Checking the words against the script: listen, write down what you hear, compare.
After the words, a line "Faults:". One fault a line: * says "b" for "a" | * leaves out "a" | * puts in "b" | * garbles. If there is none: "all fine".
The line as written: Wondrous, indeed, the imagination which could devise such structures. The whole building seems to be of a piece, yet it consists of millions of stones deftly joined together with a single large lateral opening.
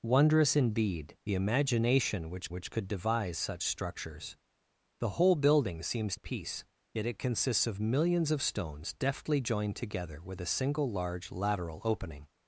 Wondrous, indeed, the imagination which which could devise such structures. The whole building seems a piece, yet it consists of millions of stones deftly joined together with a single large lateral opening.
Faults:
* puts in "which"
* leaves out "to be of"